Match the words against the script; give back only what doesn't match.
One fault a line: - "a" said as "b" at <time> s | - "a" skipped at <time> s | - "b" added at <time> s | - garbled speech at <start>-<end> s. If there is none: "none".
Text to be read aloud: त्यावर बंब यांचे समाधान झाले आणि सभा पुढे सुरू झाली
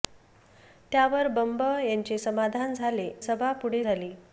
- "आणि" skipped at 3.1 s
- "सुरू" skipped at 3.8 s